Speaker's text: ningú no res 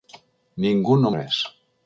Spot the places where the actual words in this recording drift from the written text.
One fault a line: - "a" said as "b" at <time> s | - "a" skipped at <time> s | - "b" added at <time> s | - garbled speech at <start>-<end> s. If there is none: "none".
none